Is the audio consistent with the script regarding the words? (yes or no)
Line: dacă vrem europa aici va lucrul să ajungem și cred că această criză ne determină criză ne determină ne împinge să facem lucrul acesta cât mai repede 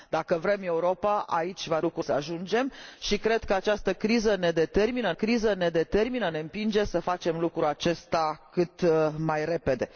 yes